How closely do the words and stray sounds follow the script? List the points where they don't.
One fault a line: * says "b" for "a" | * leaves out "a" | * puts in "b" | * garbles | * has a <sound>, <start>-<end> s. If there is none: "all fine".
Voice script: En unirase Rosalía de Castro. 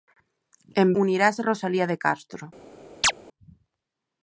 * has a chirp, 3.0-3.1 s